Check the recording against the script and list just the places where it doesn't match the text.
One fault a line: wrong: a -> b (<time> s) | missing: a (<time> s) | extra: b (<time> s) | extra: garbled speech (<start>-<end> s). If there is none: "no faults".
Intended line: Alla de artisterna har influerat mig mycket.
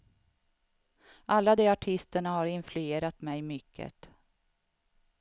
no faults